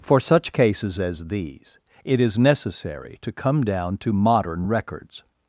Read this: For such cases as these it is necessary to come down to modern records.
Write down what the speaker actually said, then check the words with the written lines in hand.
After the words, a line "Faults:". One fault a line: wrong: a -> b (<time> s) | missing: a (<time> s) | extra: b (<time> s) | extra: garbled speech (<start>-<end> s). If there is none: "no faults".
For such cases as these it is necessary to come down to modern records.
Faults:
no faults